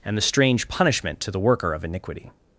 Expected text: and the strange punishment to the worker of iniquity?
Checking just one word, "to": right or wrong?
right